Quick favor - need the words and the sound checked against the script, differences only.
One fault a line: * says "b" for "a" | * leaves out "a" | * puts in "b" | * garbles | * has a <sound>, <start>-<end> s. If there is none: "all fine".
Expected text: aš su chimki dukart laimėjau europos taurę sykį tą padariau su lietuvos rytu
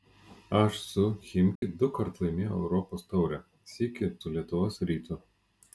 * has a dropout, 1.6-1.6 s
* leaves out "tą padariau"